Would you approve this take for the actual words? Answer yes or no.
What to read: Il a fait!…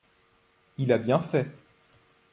no